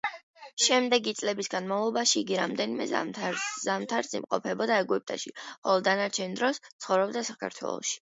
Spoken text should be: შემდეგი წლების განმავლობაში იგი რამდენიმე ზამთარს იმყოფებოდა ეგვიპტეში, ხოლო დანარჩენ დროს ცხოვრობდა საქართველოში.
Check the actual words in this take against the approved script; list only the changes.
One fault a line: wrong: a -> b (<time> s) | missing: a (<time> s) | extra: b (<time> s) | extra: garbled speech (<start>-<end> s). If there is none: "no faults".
no faults